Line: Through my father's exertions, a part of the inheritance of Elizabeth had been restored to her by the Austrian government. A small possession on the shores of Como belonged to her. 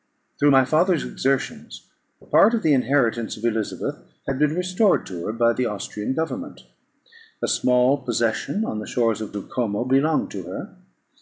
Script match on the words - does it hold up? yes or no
no